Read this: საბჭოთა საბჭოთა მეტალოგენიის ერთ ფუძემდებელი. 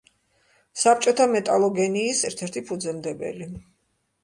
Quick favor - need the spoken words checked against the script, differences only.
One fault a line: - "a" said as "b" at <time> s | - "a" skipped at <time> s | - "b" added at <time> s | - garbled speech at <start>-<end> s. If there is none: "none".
- "საბჭოთა" skipped at 1.3 s
- "ერთი" added at 2.5 s